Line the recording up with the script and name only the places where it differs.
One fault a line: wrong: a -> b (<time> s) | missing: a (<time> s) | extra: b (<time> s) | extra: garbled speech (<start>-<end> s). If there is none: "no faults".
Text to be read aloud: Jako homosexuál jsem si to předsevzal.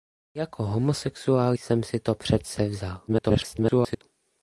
extra: garbled speech (3.1-4.0 s)